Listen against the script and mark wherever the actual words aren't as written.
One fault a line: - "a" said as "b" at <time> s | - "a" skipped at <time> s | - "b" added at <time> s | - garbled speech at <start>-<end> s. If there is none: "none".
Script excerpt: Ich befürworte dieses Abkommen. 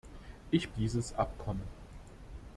- "befürworte" skipped at 0.7 s